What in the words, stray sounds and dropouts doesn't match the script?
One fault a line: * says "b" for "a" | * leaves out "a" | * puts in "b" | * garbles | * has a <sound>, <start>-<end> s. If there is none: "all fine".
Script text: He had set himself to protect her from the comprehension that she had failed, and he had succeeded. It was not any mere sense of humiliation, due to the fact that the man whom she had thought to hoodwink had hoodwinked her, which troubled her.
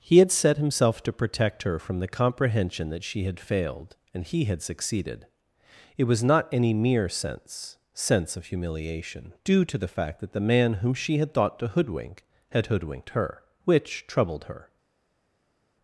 * puts in "sense"